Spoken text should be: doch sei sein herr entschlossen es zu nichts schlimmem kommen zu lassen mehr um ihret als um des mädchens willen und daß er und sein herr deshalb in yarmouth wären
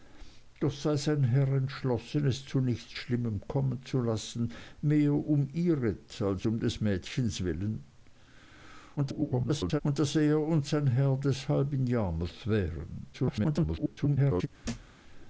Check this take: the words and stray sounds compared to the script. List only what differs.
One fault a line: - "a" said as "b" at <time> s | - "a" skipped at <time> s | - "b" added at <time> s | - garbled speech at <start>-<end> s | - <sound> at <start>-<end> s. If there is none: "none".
- garbled speech at 9.0-9.8 s
- garbled speech at 13.1-14.5 s
- thud at 14.6-15.0 s